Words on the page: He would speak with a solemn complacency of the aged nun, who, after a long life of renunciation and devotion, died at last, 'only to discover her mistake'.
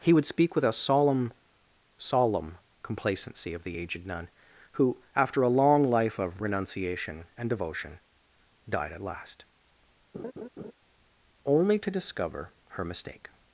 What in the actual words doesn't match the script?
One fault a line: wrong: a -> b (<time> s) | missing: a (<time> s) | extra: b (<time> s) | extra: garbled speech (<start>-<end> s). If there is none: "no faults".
extra: solemn (2.0 s)